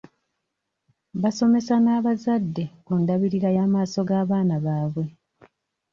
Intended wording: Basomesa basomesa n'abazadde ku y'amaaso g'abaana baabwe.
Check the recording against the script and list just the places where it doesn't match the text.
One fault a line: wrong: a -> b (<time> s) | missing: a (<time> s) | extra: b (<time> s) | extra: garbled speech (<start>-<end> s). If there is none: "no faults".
missing: basomesa (1.8 s)
extra: ndabirira (3.0 s)